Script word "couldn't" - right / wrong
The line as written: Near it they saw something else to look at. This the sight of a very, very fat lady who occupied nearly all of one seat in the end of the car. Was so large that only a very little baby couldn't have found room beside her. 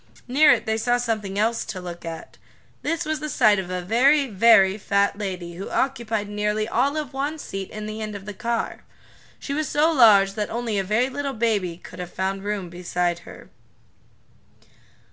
wrong